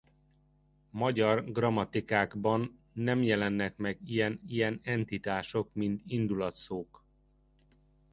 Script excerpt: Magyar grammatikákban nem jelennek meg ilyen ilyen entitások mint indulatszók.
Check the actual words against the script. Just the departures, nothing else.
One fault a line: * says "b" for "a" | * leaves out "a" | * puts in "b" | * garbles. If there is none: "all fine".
all fine